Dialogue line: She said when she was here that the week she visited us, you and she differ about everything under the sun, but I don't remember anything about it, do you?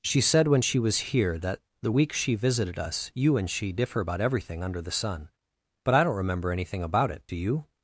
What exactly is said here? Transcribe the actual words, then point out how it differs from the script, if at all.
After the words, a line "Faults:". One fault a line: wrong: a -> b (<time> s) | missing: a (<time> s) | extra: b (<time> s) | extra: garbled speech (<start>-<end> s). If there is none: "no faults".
She said when she was here that the week she visited us, you and she differ about everything under the sun, but I don't remember anything about it, do you?
Faults:
no faults